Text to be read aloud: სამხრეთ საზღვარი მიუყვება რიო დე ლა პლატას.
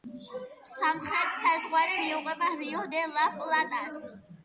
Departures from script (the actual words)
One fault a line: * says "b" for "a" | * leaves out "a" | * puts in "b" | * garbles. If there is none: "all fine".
all fine